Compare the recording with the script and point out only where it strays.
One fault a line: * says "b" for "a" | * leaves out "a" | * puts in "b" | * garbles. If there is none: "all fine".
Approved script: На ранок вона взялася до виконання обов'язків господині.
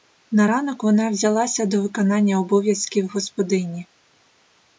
all fine